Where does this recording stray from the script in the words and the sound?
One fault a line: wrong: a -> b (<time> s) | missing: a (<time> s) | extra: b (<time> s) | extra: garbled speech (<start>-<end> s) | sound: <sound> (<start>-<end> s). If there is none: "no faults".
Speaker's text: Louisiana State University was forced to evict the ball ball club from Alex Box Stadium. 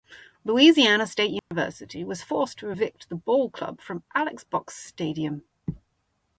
sound: dropout (1.4-1.5 s)
missing: ball (3.5 s)